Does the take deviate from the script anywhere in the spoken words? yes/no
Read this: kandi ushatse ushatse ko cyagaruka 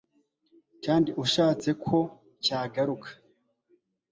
yes